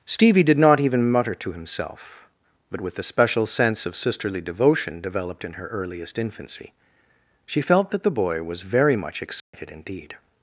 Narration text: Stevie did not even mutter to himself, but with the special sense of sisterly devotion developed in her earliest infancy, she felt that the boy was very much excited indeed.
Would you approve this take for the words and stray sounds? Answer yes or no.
no